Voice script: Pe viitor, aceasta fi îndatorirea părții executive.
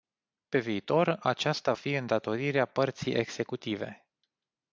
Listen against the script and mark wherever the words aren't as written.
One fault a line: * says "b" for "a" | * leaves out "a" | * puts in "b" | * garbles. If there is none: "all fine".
all fine